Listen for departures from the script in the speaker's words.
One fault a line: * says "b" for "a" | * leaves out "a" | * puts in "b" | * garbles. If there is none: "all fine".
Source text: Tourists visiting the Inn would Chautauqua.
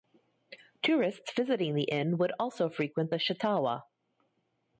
* puts in "also frequent the"